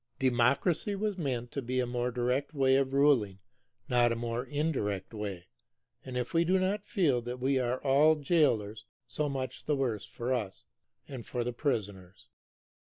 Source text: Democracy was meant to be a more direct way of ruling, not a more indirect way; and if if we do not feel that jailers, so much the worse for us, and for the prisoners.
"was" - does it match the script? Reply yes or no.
yes